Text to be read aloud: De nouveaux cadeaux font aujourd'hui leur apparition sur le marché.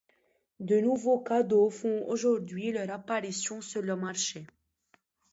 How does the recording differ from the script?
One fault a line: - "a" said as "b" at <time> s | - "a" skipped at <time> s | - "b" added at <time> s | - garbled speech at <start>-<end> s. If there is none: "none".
none